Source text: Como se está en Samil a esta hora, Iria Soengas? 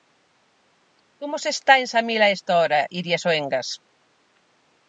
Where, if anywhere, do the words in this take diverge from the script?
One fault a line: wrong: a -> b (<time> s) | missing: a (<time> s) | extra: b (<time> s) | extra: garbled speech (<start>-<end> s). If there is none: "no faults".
no faults